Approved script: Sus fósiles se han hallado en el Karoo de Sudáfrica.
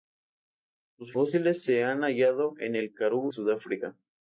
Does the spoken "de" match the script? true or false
false